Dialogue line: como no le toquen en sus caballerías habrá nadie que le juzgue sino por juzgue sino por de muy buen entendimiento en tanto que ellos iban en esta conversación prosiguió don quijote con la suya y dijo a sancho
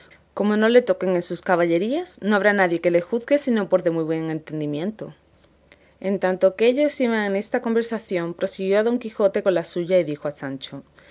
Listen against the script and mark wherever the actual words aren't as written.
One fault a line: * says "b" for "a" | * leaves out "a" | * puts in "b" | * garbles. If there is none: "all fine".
* puts in "no"
* leaves out "juzgue sino por"